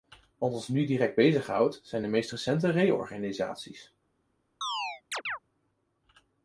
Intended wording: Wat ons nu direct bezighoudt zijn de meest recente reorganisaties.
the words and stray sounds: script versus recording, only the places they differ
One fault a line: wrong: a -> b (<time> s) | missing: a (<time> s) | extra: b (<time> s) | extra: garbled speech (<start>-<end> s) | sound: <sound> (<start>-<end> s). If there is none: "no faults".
sound: chirp (4.6-5.4 s)